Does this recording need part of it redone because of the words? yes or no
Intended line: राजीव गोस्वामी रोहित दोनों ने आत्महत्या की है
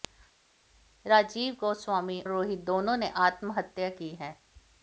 no